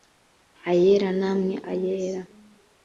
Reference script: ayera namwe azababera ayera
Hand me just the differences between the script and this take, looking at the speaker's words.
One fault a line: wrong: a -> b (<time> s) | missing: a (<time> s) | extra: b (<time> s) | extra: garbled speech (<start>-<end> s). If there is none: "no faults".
missing: azababera (1.6 s)